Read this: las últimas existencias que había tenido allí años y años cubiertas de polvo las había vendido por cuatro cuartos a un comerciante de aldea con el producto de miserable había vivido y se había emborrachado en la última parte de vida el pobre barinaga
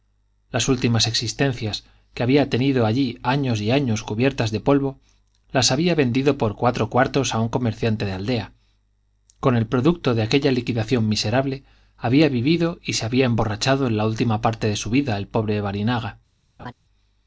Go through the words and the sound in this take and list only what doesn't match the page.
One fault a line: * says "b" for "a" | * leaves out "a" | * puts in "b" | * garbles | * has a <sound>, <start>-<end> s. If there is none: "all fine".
* puts in "aquella liquidación"
* puts in "su"
* has a laugh, 16.6-16.7 s